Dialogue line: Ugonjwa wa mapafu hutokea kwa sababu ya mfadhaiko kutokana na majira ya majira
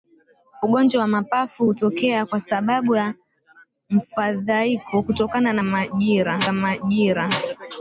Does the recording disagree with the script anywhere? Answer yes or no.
no